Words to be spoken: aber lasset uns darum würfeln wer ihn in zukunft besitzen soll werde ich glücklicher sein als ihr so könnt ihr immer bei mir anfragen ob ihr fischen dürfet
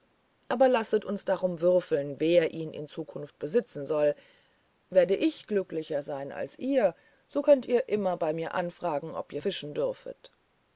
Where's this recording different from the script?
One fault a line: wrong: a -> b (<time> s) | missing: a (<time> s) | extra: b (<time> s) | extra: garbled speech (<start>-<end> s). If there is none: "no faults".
no faults